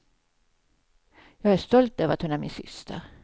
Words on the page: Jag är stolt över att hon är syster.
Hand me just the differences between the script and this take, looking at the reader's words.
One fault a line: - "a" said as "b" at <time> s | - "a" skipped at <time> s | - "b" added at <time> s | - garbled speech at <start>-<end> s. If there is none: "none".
- "min" added at 2.4 s